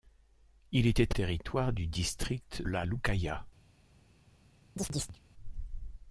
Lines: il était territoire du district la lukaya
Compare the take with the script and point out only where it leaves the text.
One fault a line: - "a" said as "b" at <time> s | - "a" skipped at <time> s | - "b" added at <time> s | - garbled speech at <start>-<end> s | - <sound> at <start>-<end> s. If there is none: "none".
- chirp at 4.8-5.2 s